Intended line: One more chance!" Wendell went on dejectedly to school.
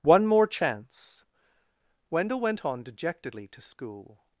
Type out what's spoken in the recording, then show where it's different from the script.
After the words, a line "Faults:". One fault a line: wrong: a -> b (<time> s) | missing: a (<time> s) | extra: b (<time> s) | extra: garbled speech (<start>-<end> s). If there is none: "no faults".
One more chance!" Wendell went on dejectedly to school.
Faults:
no faults